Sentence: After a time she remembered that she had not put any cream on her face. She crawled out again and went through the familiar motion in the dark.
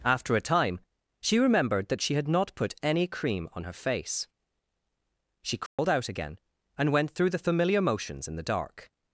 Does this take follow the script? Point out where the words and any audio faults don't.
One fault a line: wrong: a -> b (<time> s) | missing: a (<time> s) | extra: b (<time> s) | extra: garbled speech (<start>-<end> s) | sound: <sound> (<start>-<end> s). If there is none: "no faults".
sound: dropout (5.7-5.8 s)
wrong: motion -> motions (7.8 s)